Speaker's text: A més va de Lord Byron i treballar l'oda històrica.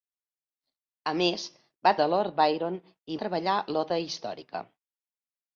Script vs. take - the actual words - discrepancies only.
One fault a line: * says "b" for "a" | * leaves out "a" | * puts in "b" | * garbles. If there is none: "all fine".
all fine